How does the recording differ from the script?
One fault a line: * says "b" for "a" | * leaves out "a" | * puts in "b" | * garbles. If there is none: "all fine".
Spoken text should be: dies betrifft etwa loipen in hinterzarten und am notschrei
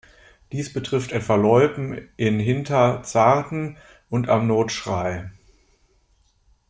all fine